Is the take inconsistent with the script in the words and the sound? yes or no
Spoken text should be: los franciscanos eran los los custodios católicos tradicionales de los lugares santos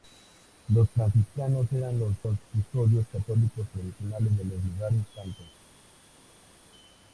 no